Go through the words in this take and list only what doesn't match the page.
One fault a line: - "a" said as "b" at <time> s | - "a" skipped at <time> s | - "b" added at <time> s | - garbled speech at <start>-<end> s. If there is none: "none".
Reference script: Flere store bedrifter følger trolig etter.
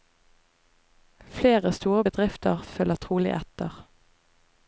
none